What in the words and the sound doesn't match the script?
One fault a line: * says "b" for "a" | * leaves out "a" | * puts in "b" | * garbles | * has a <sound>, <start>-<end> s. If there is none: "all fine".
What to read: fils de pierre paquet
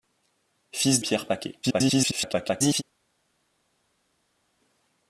* leaves out "de"
* garbles